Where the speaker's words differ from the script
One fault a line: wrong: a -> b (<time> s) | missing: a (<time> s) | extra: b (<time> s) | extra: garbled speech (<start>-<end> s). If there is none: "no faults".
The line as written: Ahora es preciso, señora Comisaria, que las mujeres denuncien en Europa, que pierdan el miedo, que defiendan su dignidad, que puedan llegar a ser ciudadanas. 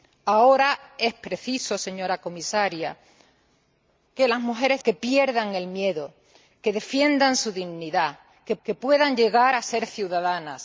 missing: denuncien en Europa (4.8 s)
extra: que (8.6 s)